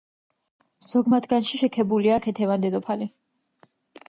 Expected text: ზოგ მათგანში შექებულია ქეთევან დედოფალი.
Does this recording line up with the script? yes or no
yes